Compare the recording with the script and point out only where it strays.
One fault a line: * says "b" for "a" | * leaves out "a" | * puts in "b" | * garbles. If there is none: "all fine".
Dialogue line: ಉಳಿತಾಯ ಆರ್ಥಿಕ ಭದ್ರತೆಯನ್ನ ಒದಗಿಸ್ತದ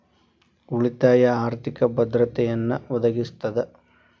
all fine